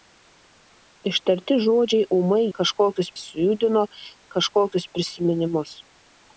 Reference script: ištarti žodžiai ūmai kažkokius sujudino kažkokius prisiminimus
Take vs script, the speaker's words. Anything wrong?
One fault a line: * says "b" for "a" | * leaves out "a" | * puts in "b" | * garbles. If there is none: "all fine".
all fine